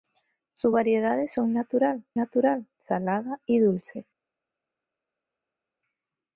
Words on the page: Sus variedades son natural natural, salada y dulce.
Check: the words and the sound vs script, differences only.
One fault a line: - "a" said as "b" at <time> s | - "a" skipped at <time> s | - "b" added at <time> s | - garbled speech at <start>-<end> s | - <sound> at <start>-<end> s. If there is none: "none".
none